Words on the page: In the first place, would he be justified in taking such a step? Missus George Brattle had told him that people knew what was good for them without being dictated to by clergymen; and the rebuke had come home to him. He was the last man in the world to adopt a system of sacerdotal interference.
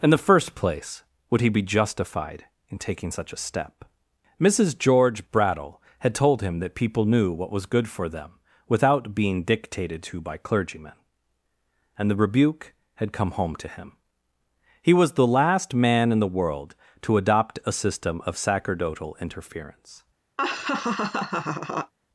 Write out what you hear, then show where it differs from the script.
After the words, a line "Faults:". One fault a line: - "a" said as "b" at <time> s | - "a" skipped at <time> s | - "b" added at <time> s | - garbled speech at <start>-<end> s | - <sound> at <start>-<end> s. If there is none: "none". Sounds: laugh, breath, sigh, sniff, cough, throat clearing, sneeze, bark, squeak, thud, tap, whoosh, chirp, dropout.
In the first place, would he be justified in taking such a step? Missus George Brattle had told him that people knew what was good for them without being dictated to by clergymen; and the rebuke had come home to him. He was the last man in the world to adopt a system of sacerdotal interference.
Faults:
- laugh at 20.4-21.9 s